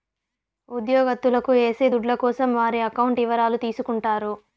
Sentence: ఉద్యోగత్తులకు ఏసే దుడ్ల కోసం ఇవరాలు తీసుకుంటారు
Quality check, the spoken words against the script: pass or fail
fail